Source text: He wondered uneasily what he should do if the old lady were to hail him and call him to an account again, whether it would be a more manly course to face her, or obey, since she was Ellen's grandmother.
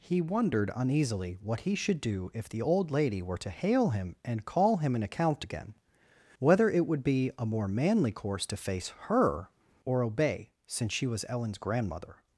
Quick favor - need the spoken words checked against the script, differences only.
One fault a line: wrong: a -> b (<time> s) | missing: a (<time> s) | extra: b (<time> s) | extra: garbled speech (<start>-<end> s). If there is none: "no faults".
missing: to (5.0 s)